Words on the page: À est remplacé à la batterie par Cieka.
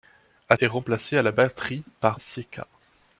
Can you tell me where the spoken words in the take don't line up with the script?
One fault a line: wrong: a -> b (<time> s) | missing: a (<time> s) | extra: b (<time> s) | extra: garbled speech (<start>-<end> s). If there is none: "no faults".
no faults